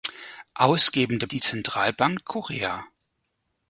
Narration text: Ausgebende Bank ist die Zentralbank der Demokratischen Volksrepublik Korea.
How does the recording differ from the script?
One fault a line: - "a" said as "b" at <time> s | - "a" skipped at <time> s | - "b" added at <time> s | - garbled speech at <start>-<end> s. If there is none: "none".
- "Bank ist" skipped at 1.3 s
- "der Demokratischen Volksrepublik" skipped at 2.3 s